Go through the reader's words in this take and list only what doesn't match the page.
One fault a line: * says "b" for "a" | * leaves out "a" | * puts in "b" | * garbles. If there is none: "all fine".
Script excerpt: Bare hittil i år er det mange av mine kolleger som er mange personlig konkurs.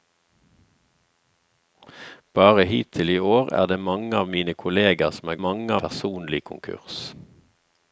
all fine